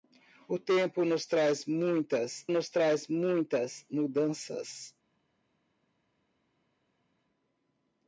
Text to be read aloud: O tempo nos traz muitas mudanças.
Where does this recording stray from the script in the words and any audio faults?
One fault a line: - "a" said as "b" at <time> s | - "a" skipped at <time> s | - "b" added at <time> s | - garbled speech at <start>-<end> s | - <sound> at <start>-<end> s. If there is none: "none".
- "nos traz muitas" added at 2.5 s